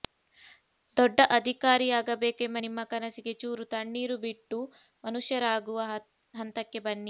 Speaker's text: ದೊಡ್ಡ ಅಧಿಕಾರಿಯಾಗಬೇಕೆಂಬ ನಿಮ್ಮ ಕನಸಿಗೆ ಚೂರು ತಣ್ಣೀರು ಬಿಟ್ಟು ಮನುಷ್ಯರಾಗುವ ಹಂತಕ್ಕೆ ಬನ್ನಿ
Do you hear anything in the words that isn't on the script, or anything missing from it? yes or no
no